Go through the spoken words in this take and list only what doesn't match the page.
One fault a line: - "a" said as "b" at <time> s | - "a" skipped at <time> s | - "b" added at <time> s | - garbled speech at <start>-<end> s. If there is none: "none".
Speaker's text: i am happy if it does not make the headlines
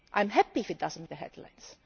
- "make" skipped at 1.1 s